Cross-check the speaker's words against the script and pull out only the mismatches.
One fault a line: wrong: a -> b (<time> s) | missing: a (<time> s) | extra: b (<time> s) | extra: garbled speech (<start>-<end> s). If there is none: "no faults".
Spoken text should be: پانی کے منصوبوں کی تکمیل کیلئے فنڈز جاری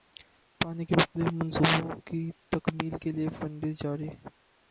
extra: مختلف (1.0 s)